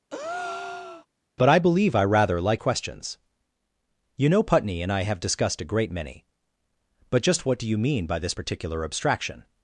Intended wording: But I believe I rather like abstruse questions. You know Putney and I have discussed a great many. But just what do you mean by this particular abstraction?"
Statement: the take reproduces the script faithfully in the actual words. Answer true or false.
false